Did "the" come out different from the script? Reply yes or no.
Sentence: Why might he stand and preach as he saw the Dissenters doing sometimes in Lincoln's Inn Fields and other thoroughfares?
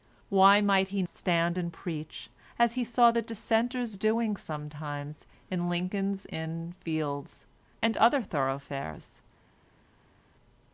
no